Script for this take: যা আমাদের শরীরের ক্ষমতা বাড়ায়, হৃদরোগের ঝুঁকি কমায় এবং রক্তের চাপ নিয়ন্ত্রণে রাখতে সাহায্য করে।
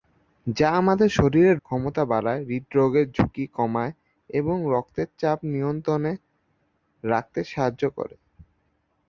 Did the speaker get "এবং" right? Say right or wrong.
right